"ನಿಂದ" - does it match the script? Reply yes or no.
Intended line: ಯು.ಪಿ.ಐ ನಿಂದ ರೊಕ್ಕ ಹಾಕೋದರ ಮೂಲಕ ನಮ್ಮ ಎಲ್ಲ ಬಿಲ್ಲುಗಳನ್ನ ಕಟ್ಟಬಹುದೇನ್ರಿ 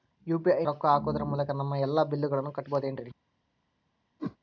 no